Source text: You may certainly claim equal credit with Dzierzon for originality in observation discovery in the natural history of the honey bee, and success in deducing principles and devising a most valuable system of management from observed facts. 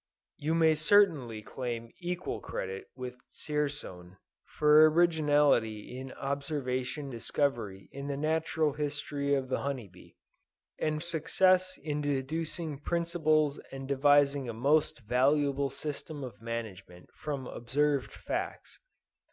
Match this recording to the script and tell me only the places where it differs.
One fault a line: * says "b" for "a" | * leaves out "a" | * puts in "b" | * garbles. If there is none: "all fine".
all fine